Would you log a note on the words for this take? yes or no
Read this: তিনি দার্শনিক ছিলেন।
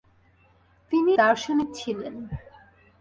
no